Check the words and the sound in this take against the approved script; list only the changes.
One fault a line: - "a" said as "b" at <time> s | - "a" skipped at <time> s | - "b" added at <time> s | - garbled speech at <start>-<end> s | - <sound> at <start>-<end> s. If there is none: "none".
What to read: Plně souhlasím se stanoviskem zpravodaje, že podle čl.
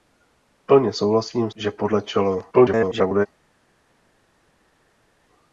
- "se stanoviskem zpravodaje" skipped at 1.5 s
- garbled speech at 2.5-3.3 s